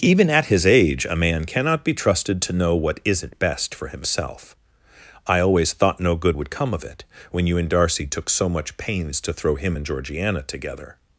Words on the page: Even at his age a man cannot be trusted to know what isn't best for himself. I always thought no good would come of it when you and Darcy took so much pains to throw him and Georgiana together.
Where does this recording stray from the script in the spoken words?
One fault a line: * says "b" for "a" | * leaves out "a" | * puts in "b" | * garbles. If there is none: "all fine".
all fine